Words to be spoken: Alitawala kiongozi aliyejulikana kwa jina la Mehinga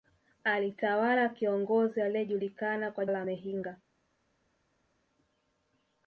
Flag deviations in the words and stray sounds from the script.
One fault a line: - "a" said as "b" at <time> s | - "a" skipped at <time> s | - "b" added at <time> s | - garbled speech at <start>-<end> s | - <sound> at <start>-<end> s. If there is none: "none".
- "jina" skipped at 3.0 s